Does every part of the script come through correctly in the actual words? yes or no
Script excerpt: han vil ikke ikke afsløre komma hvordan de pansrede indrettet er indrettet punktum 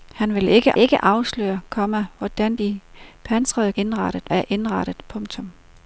yes